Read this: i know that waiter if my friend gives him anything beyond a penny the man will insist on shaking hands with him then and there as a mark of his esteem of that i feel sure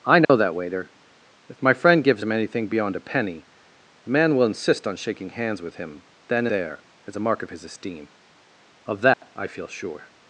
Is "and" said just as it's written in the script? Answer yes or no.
no